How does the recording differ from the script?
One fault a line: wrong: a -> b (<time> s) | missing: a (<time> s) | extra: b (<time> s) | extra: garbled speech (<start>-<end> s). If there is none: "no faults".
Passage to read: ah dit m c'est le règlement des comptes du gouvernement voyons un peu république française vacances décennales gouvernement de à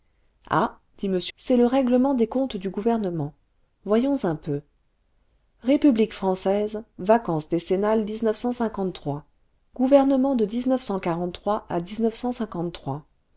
no faults